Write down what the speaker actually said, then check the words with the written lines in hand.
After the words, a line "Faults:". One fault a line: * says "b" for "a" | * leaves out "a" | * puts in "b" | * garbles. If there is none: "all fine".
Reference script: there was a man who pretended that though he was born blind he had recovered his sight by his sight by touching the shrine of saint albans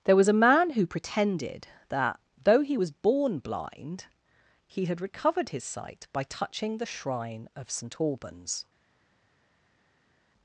there was a man who pretended that though he was born blind he had recovered his sight by touching the shrine of saint albans
Faults:
* leaves out "his sight by"